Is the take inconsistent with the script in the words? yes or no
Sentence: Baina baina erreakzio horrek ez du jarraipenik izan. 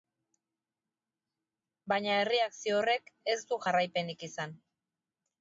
yes